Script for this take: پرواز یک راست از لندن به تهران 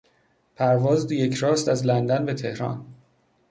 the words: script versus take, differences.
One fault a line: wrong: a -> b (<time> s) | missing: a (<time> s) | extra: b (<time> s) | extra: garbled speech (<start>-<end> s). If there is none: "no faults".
no faults